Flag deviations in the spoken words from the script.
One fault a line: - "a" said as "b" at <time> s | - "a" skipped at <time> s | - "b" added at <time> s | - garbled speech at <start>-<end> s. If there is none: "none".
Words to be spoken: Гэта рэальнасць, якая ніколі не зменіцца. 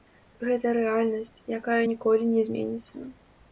none